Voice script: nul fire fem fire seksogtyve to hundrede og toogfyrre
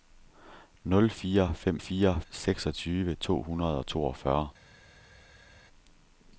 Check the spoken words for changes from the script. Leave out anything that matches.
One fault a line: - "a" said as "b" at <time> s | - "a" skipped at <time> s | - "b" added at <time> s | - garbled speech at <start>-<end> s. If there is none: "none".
none